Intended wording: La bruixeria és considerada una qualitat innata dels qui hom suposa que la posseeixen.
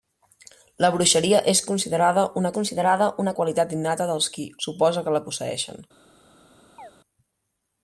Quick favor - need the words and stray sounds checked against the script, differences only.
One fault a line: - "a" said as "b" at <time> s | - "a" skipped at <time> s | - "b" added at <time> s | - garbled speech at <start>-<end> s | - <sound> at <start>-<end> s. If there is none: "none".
- "considerada una" added at 2.5 s
- "hom" skipped at 4.5 s
- chirp at 6.8-6.9 s